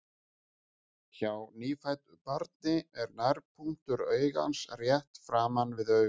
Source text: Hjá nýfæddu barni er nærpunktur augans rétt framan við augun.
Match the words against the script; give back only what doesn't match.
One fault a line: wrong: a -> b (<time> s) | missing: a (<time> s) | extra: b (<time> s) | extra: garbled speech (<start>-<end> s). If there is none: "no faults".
no faults